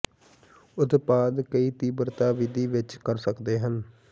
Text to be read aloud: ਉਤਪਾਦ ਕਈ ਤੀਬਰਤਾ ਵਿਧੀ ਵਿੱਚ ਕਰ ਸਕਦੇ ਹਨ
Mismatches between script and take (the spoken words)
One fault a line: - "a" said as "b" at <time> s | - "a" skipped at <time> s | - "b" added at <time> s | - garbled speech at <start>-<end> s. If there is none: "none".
none